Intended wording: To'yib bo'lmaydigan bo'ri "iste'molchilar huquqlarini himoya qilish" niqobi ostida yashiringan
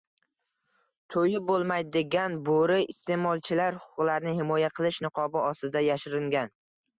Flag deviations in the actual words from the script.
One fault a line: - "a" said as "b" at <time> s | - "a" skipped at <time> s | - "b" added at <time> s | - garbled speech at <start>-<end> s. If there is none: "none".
none